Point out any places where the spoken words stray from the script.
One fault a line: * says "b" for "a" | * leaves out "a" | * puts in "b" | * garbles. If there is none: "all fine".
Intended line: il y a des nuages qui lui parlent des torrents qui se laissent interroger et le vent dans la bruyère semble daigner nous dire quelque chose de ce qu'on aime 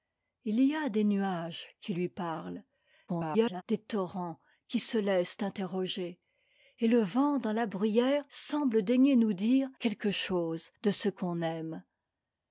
* garbles